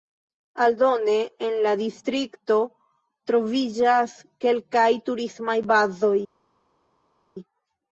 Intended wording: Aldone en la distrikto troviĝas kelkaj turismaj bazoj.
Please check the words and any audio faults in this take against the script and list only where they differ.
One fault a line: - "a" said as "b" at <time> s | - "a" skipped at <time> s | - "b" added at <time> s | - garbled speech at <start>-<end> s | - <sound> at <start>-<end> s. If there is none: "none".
none